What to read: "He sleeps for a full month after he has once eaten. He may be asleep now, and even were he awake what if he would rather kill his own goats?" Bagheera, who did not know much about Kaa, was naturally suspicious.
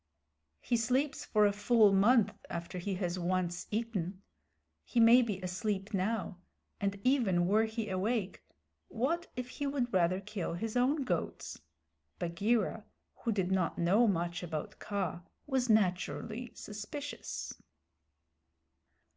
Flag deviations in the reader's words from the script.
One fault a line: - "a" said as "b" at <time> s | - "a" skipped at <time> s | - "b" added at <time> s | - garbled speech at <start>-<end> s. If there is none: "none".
none